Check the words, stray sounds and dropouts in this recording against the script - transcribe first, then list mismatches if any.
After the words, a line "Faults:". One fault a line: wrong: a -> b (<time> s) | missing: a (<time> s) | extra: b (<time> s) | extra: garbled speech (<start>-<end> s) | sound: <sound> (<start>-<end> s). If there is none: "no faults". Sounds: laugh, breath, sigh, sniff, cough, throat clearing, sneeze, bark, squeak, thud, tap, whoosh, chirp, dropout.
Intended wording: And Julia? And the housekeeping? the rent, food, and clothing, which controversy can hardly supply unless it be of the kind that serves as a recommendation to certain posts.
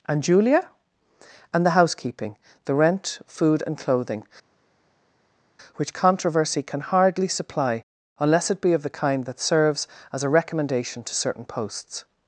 And Julia? And the housekeeping? the rent, food, and clothing, which controversy can hardly supply unless it be of the kind that serves as a recommendation to certain posts.
Faults:
no faults